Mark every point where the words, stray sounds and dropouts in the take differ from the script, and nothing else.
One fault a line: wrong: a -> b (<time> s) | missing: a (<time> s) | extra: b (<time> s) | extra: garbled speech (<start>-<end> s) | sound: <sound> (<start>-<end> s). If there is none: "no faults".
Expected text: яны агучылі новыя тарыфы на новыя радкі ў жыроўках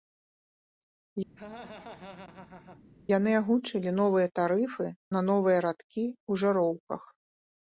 sound: laugh (1.4-2.8 s)